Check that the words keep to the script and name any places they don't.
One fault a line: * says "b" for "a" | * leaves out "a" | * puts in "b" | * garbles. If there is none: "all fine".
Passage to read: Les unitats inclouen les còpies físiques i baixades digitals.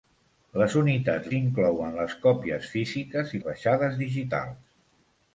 all fine